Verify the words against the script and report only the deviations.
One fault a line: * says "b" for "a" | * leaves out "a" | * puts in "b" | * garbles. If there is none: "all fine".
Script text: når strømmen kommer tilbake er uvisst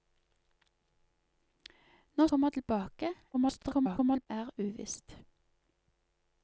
* leaves out "strømmen"
* garbles